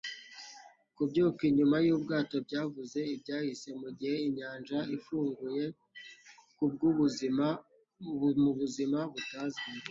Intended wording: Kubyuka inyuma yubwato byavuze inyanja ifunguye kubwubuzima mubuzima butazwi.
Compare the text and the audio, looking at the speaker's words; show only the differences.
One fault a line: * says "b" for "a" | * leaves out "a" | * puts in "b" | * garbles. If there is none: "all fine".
* puts in "ibyahise mugihe"